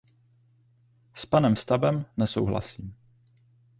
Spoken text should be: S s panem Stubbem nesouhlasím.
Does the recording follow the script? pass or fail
fail